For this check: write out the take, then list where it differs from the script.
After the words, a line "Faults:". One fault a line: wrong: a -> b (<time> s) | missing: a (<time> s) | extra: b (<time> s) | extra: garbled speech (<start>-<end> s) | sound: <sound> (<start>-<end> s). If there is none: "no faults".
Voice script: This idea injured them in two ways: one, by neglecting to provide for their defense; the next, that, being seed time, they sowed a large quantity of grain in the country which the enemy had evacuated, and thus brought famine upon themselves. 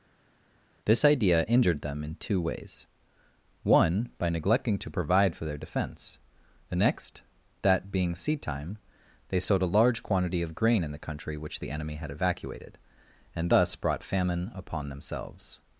This idea injured them in two ways: one, by neglecting to provide for their defense; the next, that, being seed time, they sowed a large quantity of grain in the country which the enemy had evacuated, and thus brought famine upon themselves.
Faults:
no faults